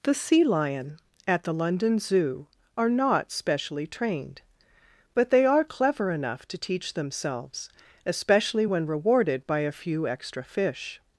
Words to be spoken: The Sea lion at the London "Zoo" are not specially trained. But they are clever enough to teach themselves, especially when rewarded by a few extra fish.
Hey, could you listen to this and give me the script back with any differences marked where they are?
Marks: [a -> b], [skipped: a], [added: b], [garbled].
The Sea lion at the London "Zoo" are not specially trained. But they are clever enough to teach themselves, especially when rewarded by a few extra fish.